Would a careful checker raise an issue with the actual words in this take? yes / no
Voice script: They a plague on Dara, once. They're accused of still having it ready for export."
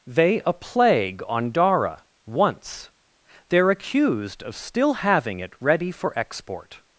no